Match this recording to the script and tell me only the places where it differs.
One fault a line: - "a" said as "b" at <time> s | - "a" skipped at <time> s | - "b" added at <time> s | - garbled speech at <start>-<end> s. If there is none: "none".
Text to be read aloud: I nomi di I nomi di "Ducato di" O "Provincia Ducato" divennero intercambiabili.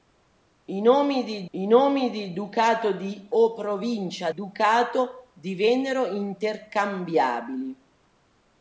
none